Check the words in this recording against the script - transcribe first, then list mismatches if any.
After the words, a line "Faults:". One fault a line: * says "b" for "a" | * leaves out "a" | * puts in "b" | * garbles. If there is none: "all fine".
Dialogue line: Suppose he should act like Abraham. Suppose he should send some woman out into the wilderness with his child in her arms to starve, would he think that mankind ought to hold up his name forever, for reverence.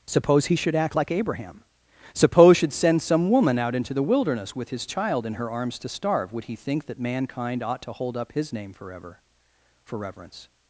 Suppose he should act like Abraham. Suppose should send some woman out into the wilderness with his child in her arms to starve, would he think that mankind ought to hold up his name forever, for reverence.
Faults:
* leaves out "he"